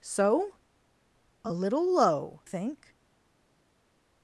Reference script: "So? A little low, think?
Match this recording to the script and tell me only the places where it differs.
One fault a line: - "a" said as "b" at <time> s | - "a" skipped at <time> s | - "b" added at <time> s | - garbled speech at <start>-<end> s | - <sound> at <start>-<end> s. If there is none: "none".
none